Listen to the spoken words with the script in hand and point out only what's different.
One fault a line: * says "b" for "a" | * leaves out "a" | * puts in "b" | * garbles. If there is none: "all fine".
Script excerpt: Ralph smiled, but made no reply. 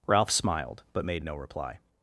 all fine